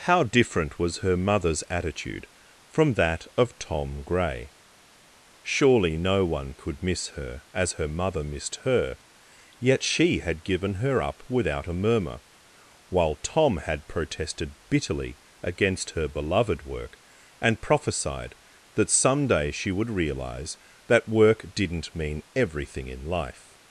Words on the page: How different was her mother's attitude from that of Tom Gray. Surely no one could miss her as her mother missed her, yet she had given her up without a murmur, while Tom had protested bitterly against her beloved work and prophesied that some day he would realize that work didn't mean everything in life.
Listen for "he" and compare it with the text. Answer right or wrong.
wrong